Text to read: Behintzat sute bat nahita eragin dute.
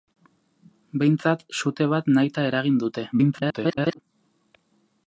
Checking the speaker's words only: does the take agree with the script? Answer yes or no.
no